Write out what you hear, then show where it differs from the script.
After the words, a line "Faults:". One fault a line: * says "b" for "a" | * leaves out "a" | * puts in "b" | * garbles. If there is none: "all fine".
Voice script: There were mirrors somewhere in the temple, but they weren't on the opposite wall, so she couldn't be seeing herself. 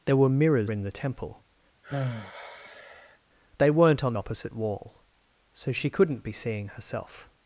There were mirrors in the temple, they weren't on opposite wall, so she couldn't be seeing herself.
Faults:
* leaves out "somewhere"
* leaves out "but"
* leaves out "the"